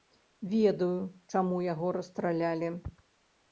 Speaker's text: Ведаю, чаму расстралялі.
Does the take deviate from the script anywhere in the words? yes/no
yes